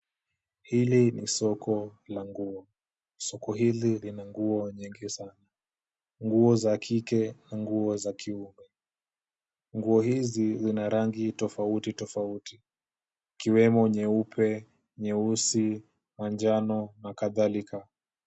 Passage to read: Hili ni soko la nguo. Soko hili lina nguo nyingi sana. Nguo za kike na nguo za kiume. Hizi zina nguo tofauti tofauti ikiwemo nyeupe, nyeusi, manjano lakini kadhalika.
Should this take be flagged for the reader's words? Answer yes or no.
yes